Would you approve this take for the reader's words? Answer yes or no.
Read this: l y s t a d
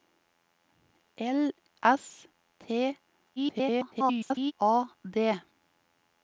no